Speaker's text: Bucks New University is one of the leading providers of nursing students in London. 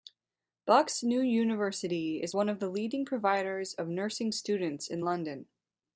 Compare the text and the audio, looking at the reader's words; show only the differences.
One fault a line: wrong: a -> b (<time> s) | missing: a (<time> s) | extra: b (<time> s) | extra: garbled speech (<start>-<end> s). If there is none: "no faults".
no faults